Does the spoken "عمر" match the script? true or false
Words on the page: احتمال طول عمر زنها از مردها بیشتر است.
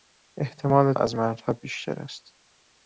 false